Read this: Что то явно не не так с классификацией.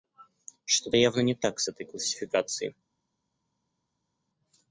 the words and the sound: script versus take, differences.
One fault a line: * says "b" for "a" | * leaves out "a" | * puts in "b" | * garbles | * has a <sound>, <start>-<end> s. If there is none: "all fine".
* leaves out "не"
* puts in "этой"